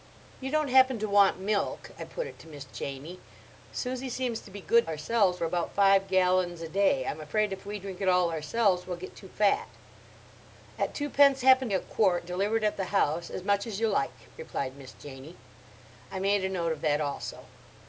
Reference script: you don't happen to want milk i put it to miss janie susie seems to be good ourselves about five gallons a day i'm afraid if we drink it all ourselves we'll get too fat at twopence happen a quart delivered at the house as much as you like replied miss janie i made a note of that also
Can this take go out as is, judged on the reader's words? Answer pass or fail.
pass